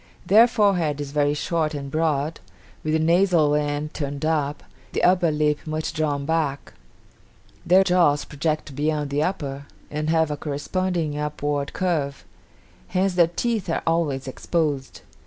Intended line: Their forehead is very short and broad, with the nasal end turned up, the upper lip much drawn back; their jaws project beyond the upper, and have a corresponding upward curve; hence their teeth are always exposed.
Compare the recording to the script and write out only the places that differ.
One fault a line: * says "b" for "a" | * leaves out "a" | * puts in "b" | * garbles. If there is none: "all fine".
all fine